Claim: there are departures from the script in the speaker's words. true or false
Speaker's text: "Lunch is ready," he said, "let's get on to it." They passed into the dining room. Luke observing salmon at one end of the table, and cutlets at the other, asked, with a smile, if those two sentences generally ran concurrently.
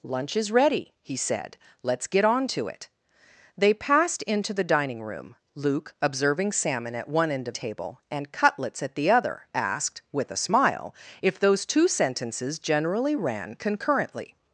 true